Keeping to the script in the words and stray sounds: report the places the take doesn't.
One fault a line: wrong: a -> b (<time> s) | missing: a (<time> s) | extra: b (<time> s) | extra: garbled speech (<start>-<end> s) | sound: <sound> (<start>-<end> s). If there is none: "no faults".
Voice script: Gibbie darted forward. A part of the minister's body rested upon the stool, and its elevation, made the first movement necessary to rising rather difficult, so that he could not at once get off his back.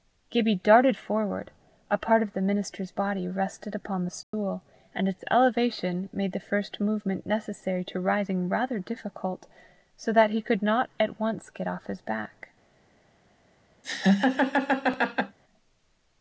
sound: dropout (4.2-4.3 s)
sound: laugh (13.8-15.4 s)